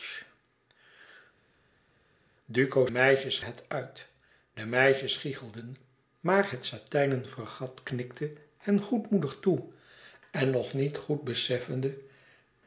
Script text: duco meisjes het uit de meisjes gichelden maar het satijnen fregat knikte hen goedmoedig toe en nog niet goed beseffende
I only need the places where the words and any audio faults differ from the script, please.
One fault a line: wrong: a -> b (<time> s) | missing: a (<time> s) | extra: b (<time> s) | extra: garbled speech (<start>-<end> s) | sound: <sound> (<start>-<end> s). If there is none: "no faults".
no faults